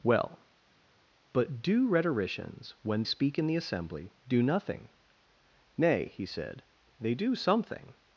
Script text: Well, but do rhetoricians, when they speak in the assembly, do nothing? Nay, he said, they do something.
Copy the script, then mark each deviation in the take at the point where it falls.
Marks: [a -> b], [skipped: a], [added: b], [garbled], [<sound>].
Well, but do rhetoricians, when [skipped: they] speak in the assembly, do nothing? Nay, he said, they do something.